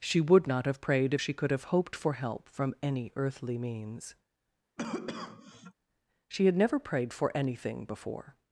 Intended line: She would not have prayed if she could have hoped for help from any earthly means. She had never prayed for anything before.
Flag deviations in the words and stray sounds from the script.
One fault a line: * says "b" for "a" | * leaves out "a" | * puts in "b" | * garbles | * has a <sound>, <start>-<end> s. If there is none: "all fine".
* has a cough, 4.8-5.7 s